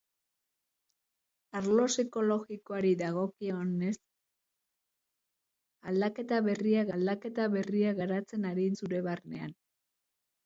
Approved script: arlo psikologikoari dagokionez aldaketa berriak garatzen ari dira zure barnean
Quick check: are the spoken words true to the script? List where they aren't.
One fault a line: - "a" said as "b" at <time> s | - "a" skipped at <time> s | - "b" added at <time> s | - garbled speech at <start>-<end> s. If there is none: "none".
- "aldaketa berriak" added at 7.0 s
- "dira" skipped at 8.7 s